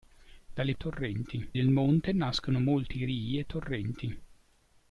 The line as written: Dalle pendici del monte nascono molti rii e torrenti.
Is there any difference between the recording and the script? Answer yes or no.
yes